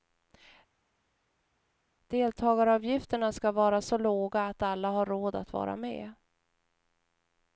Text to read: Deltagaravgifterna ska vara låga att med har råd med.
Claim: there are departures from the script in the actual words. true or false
true